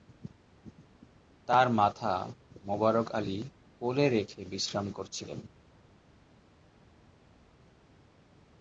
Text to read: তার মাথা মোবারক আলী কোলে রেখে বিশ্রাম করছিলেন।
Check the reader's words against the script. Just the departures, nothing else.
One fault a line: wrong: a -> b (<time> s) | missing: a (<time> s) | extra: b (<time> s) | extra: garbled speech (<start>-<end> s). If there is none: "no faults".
no faults